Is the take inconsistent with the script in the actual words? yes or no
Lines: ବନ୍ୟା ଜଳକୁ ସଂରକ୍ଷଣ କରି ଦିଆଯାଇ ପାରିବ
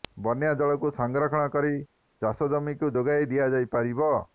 yes